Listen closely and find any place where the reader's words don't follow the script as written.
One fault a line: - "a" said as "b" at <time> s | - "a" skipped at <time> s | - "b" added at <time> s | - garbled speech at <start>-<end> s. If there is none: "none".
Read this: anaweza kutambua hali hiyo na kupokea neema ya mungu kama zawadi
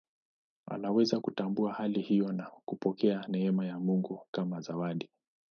none